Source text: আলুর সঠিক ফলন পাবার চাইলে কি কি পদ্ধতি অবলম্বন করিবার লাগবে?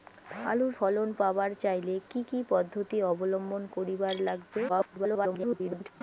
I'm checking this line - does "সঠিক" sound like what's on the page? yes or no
no